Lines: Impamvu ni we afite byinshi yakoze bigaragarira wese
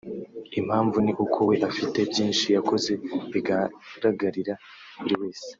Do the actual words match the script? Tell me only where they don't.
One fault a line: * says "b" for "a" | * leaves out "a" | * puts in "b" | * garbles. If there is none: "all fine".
* puts in "uko"
* puts in "buri"